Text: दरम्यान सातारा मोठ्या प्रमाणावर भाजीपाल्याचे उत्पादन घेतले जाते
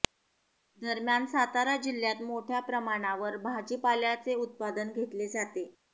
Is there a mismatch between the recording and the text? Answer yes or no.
yes